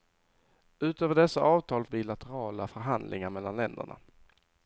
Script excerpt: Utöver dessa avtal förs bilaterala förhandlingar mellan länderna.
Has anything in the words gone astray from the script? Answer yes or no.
yes